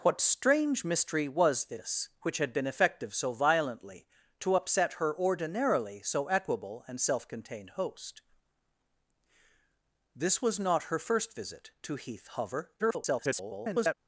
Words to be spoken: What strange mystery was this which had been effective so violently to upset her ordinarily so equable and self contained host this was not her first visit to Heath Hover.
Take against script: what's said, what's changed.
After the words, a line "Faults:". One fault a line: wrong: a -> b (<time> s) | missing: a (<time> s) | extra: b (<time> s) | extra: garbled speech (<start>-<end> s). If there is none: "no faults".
What strange mystery was this which had been effective so violently to upset her ordinarily so equable and self contained host this was not her first visit to Heath Hover. [garbled]
Faults:
extra: garbled speech (12.8-13.9 s)